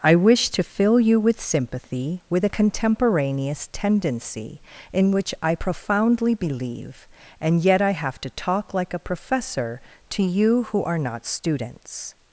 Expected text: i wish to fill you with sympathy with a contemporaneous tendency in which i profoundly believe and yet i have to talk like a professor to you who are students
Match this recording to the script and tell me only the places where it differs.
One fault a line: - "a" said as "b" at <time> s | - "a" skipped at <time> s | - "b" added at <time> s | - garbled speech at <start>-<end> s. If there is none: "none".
- "not" added at 11.0 s